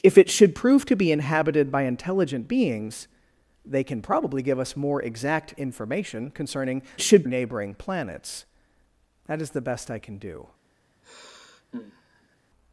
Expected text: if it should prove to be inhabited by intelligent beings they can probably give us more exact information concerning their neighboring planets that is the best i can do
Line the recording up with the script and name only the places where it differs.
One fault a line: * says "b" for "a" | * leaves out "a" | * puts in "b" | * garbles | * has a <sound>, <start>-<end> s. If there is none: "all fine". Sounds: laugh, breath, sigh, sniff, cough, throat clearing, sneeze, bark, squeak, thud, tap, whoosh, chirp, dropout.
* says "should" for "their"
* has a sigh, 11.0-12.4 s